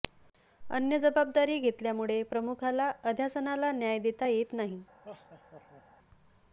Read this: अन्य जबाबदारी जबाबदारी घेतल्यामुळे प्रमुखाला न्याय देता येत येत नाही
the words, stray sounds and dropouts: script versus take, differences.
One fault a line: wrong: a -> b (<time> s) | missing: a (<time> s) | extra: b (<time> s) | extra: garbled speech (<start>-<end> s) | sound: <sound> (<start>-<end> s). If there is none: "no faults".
missing: जबाबदारी (1.6 s)
extra: अध्यासनाला (3.0 s)
missing: येत (4.5 s)
sound: laugh (5.0-5.8 s)